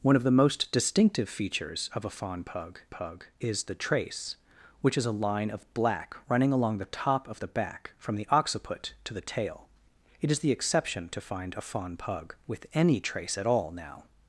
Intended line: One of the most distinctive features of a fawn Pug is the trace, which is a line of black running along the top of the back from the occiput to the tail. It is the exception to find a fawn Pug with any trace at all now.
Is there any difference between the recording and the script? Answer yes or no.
yes